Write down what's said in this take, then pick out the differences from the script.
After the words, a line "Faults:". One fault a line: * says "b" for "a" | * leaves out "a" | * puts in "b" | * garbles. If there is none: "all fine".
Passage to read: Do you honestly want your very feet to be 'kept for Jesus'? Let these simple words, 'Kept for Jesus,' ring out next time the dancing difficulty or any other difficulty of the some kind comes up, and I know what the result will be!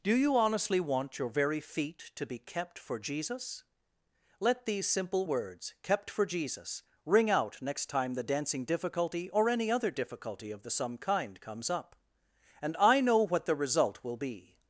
Do you honestly want your very feet to be 'kept for Jesus'? Let these simple words, 'Kept for Jesus,' ring out next time the dancing difficulty or any other difficulty of the some kind comes up, and I know what the result will be!
Faults:
all fine